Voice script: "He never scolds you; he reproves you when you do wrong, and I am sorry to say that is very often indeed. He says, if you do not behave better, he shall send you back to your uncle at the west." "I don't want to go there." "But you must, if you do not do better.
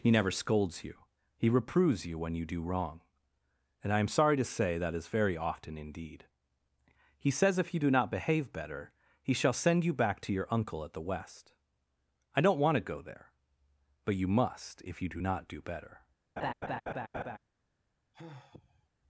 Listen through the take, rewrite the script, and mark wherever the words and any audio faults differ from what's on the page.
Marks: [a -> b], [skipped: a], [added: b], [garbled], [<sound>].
"He never scolds you; he reproves you when you do wrong, and I am sorry to say that is very often indeed. He says, if you do not behave better, he shall send you back to your uncle at the west." "I don't want to go there." "But you must, if you do not do better. [laugh] [sigh]